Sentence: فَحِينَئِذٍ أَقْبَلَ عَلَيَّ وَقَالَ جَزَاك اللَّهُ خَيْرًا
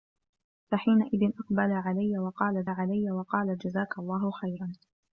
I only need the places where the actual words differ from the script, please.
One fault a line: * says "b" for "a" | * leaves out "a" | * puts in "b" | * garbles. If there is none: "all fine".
* puts in "عَلَيَّ وَقَالَ"